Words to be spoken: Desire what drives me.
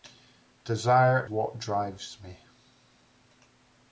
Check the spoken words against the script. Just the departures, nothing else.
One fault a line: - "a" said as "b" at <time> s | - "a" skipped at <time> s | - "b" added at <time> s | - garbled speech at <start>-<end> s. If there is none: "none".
none